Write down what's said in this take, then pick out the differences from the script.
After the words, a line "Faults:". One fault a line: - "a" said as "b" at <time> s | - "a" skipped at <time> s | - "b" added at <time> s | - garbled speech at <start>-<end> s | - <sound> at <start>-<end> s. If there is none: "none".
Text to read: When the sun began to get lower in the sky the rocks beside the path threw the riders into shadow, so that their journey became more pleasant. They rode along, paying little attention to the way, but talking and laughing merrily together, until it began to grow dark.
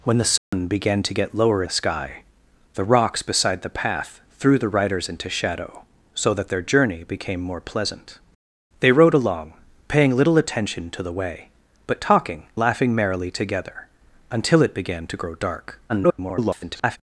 When the sun began to get lower the sky the rocks beside the path threw the riders into shadow, so that their journey became more pleasant. They rode along, paying little attention to the way, but talking laughing merrily together, until it began to grow dark. [garbled]
Faults:
- dropout at 0.4-0.5 s
- "in" skipped at 1.6 s
- "and" skipped at 12.4 s
- garbled speech at 15.9-17.0 s